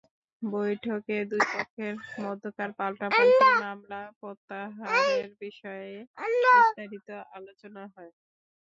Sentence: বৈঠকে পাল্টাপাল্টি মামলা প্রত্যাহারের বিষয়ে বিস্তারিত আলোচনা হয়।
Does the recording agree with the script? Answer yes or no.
no